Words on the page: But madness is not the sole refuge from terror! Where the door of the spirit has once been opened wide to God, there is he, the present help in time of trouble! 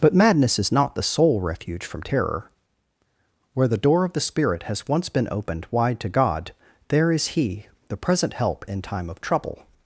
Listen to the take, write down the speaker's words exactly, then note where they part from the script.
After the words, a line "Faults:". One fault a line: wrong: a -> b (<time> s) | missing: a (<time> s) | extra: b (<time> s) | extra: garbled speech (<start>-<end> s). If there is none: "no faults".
But madness is not the sole refuge from terror! Where the door of the spirit has once been opened wide to God, there is he, the present help in time of trouble!
Faults:
no faults